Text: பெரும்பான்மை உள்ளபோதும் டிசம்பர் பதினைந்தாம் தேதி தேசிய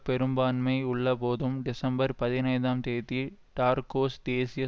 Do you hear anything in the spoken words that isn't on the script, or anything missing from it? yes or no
yes